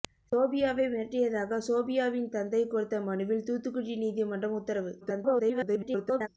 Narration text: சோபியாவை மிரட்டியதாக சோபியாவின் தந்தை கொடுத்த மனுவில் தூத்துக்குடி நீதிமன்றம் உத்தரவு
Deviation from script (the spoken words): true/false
true